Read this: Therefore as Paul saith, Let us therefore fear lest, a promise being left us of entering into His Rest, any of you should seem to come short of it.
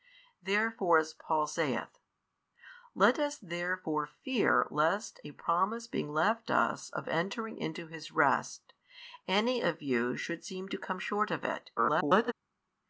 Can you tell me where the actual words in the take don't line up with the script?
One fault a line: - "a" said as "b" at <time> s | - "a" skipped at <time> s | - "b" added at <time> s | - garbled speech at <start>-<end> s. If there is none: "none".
- garbled speech at 11.8-12.3 s